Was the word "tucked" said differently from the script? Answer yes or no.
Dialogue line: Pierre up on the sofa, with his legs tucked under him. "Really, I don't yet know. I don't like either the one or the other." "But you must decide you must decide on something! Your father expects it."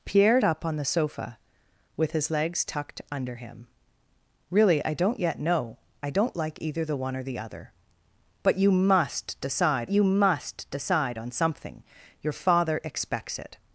no